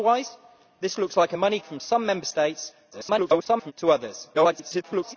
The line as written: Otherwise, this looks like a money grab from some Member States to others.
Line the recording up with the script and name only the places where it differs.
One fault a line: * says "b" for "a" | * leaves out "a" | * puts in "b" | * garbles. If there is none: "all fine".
* leaves out "grab"
* garbles
* garbles